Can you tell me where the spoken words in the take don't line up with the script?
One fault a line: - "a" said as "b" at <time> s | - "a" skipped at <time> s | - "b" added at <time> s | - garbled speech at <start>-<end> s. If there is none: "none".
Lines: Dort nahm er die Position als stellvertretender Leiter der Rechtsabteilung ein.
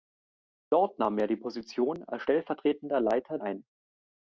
- "der Rechtsabteilung" skipped at 3.4 s